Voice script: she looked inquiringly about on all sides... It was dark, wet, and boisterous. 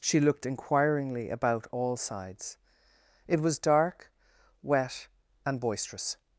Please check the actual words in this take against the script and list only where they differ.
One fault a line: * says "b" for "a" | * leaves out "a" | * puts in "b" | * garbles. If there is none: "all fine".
* leaves out "on"